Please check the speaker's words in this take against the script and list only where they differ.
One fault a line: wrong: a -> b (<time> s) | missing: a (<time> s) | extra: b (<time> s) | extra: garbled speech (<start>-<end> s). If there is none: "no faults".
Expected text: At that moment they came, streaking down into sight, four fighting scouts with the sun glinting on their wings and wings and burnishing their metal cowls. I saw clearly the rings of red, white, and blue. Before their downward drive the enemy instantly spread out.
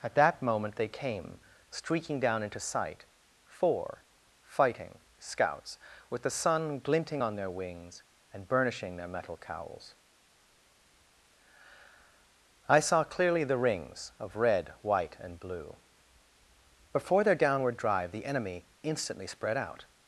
missing: wings and (8.5 s)